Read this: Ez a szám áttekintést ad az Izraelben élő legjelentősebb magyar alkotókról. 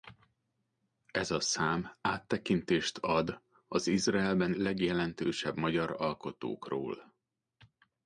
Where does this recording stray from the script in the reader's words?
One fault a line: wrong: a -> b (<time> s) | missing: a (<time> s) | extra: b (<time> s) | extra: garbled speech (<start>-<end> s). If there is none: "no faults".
missing: élő (4.5 s)